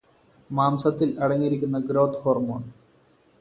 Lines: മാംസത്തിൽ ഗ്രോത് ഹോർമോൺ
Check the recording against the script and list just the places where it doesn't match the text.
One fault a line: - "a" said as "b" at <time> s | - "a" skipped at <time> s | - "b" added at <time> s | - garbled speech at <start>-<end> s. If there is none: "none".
- "അടങ്ങിയിരിക്കുന്ന" added at 1.2 s